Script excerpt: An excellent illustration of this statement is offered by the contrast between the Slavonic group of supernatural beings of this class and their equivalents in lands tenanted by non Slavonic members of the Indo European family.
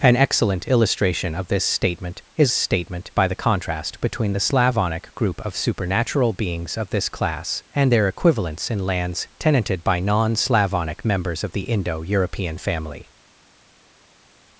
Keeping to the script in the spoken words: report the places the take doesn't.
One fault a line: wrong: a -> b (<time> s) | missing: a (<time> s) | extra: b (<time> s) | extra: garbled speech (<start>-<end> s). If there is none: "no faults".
wrong: offered -> statement (2.5 s)